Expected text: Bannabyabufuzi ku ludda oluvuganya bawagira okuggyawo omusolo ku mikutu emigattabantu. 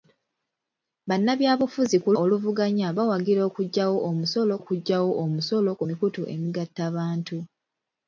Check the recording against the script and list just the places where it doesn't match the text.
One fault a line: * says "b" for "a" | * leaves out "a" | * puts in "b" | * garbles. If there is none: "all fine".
* leaves out "ludda"
* puts in "okuggyawo omusolo"